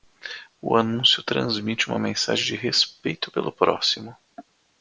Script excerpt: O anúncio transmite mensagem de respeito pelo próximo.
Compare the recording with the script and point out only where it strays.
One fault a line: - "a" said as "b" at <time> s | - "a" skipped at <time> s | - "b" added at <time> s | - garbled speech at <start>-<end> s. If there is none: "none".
- "uma" added at 1.9 s